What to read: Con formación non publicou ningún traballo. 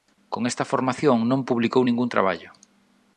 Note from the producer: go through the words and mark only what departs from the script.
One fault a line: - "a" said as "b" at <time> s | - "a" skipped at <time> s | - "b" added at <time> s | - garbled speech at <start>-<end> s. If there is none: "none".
- "esta" added at 0.5 s